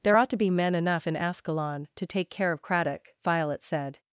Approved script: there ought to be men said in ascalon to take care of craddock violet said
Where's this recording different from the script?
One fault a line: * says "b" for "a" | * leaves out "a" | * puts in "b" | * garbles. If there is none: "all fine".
* says "enough" for "said"